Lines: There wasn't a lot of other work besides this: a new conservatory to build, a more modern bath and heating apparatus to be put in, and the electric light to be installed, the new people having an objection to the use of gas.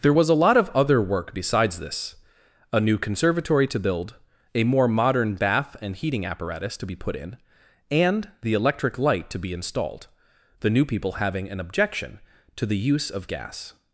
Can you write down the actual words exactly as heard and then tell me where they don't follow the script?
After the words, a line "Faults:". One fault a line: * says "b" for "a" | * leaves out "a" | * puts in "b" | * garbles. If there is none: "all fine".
There was a lot of other work besides this: a new conservatory to build, a more modern bath and heating apparatus to be put in, and the electric light to be installed, the new people having an objection to the use of gas.
Faults:
* says "was" for "wasn't"